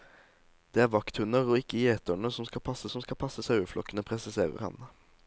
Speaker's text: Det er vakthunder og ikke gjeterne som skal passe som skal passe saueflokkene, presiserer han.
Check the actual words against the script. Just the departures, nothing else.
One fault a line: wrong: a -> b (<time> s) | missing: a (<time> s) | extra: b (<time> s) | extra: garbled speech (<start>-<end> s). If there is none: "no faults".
no faults